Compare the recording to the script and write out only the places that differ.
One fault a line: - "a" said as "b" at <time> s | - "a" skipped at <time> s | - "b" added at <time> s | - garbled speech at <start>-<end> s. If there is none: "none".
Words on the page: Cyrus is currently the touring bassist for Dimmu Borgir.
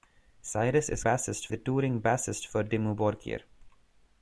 - "currently" said as "bassist" at 1.0 s